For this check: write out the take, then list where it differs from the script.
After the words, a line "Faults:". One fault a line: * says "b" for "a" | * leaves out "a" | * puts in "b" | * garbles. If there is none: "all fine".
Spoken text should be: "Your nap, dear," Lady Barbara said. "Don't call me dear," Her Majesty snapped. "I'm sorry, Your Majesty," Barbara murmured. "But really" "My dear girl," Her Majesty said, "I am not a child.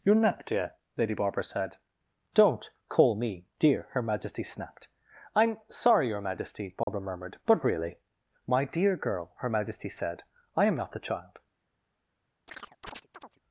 "Your nap, dear," Lady Barbara said. "Don't call me dear," Her Majesty snapped. "I'm sorry, Your Majesty," Barbara murmured. "But really" "My dear girl," Her Majesty said, "I am not the child.
Faults:
* says "the" for "a"